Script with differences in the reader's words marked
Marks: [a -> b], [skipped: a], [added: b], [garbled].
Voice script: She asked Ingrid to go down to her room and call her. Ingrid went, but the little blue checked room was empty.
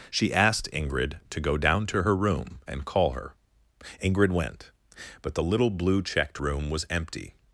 She asked Ingrid to go down to her room and call her. Ingrid went, but the little blue checked room was empty.